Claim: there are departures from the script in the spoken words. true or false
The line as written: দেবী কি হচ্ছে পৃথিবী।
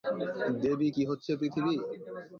false